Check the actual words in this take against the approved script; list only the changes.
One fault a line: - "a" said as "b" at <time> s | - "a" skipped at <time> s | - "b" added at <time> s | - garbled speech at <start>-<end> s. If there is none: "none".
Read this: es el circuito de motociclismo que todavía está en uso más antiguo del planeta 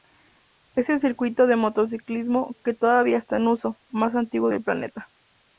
none